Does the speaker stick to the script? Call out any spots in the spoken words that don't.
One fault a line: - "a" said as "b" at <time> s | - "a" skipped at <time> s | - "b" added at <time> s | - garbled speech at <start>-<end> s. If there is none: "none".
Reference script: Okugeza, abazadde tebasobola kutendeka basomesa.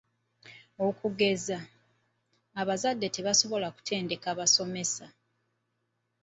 none